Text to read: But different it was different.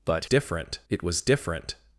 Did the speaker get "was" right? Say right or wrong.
right